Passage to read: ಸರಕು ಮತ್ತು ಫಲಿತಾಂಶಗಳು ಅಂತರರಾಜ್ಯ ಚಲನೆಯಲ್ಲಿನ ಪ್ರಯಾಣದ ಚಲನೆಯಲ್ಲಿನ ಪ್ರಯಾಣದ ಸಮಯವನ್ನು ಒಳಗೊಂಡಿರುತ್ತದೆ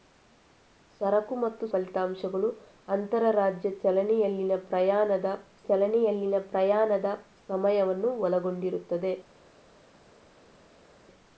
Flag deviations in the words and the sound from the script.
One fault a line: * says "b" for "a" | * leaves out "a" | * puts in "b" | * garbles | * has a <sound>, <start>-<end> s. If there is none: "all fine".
all fine